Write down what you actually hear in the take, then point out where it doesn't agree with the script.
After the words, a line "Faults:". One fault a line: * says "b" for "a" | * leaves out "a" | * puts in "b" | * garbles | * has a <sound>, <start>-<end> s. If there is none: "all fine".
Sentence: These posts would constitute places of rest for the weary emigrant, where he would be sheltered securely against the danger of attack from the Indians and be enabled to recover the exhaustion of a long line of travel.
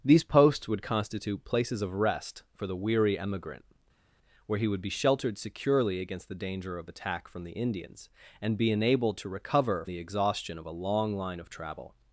These posts would constitute places of rest for the weary emigrant, where he would be sheltered securely against the danger of attack from the Indians and be enabled to recover the exhaustion of a long line of travel.
Faults:
all fine